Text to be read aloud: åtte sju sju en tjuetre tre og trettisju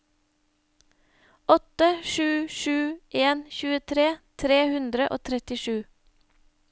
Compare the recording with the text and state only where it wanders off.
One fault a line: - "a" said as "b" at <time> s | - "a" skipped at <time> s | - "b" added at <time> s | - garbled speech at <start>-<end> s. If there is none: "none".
- "hundre" added at 4.7 s